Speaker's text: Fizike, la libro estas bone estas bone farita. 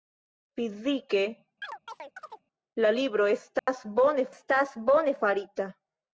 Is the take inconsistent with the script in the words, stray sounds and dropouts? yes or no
yes